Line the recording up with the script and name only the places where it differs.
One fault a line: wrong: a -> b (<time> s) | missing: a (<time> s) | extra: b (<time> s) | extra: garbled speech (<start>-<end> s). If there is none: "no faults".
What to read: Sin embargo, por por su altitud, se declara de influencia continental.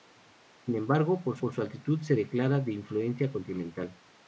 no faults